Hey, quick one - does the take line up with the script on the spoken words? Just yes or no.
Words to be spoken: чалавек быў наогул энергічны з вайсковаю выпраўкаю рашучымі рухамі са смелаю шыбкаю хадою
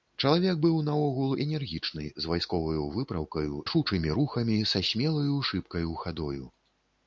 yes